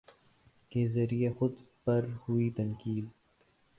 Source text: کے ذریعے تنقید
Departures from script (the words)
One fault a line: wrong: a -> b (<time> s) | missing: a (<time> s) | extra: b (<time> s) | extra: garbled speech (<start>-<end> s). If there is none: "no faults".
extra: خود پر ہوئی (1.3 s)